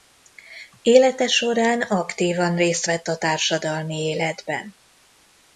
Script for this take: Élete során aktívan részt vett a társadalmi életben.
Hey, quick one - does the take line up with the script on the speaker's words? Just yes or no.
yes